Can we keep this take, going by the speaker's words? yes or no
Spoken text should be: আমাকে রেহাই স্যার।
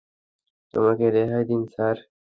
no